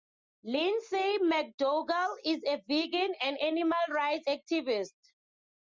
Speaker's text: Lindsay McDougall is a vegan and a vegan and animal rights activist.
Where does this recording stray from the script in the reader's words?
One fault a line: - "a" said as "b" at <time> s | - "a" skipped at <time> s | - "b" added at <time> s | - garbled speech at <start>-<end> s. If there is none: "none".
- "a vegan and" skipped at 3.4 s